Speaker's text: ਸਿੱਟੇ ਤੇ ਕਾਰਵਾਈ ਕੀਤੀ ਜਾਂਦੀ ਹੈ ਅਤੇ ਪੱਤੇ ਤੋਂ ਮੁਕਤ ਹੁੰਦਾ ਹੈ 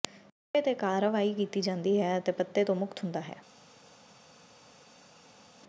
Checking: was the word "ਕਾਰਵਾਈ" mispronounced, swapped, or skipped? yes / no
no